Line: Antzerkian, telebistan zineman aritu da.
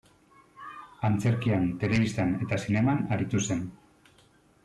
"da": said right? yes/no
no